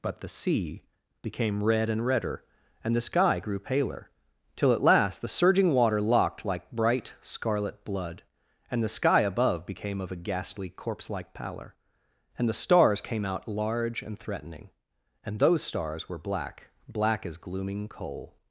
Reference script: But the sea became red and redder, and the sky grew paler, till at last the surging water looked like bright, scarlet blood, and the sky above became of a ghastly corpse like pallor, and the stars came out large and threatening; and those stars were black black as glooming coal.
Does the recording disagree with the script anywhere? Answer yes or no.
yes